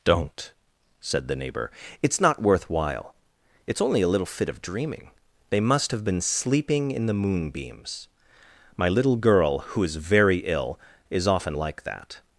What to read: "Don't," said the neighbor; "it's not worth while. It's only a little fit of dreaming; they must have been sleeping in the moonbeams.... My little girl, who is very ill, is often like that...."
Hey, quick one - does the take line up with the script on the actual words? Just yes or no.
yes